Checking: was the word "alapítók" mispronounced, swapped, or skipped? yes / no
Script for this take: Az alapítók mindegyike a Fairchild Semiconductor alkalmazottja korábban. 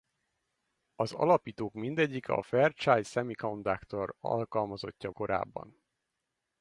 no